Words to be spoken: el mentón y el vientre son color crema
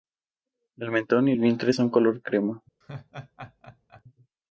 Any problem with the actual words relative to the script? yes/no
no